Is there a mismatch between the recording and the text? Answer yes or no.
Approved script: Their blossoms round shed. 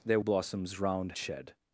no